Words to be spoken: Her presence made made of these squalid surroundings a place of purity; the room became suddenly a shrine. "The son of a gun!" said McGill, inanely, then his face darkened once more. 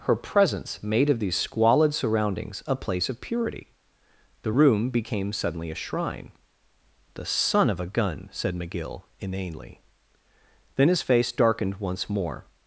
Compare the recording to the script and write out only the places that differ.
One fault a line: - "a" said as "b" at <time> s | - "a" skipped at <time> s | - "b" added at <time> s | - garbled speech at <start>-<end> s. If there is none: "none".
- "made" skipped at 1.1 s